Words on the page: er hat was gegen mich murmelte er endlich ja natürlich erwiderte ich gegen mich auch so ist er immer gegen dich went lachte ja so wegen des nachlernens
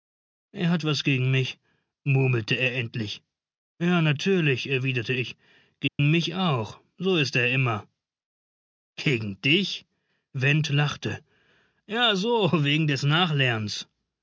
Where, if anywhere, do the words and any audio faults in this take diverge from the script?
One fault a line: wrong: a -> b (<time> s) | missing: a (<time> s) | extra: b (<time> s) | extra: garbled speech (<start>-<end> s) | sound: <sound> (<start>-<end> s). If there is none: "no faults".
sound: dropout (5.9-6.0 s)